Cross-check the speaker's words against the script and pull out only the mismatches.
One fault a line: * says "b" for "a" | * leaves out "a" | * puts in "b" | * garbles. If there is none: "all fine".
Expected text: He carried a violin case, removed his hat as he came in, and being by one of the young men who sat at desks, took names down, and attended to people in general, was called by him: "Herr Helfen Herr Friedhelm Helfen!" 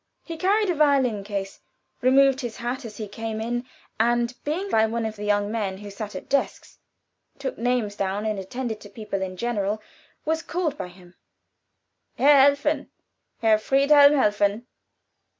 all fine